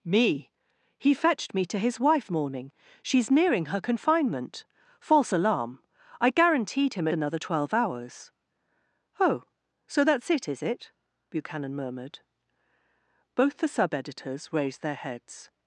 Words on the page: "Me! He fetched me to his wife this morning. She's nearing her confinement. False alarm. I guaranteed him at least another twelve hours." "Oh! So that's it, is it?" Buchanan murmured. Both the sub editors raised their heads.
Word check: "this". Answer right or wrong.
wrong